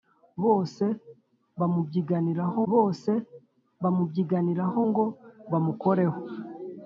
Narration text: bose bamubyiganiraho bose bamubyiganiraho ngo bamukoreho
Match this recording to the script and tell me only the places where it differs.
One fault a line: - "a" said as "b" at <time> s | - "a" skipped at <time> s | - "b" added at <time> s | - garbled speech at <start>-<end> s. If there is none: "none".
none